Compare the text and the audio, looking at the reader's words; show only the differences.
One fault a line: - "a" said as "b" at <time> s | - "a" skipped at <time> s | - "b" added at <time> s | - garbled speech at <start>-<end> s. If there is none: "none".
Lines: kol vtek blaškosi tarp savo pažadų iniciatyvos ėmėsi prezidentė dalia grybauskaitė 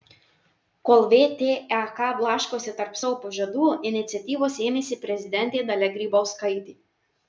none